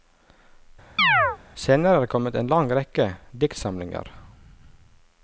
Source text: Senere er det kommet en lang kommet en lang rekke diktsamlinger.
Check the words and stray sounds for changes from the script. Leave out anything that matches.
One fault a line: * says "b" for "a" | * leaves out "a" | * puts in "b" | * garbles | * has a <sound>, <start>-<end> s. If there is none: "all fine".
* has a chirp, 1.0-1.4 s
* leaves out "kommet en lang"